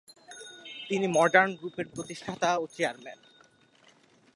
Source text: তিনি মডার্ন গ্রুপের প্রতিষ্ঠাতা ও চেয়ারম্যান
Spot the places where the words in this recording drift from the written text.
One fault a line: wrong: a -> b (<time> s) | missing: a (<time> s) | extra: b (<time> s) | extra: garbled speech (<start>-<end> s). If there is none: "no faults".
no faults